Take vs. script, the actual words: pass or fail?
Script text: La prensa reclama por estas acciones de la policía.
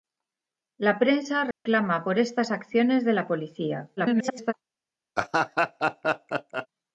fail